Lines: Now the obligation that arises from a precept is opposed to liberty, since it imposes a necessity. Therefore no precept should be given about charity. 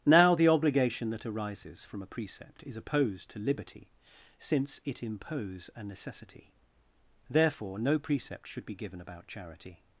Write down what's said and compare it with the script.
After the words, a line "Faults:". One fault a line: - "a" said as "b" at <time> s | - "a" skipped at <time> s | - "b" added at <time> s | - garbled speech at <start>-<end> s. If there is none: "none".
Now the obligation that arises from a precept is opposed to liberty, since it impose a necessity. Therefore no precept should be given about charity.
Faults:
- "imposes" said as "impose" at 5.0 s